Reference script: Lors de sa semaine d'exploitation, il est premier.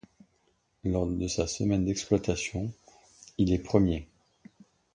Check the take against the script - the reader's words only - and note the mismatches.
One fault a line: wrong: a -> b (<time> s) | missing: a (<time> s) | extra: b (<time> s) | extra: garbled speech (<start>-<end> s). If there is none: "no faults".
no faults